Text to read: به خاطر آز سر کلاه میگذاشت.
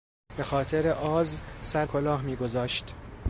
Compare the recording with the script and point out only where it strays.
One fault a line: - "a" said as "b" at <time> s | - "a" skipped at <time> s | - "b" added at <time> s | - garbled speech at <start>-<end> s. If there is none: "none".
none